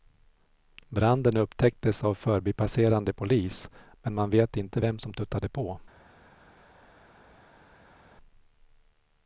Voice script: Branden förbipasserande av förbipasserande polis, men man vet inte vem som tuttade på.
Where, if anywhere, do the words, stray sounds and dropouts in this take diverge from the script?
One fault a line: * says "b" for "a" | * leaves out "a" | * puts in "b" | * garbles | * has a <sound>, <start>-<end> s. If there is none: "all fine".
* says "upptäcktes" for "förbipasserande"